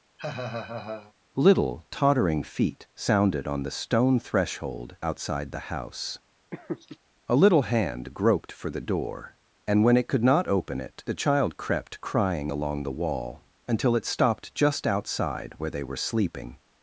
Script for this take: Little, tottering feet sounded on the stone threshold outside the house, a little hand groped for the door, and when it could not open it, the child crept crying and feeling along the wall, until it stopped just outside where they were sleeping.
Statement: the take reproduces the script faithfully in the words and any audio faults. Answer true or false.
false